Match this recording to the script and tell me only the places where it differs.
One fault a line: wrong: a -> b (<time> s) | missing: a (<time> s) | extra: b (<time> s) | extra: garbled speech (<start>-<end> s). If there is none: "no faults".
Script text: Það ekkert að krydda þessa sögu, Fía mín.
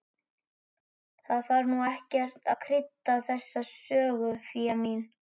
extra: þarf nú (1.5 s)